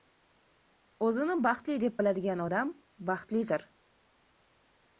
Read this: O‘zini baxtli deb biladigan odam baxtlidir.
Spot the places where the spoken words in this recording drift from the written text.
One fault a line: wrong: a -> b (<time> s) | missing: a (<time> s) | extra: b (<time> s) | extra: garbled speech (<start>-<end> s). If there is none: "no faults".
no faults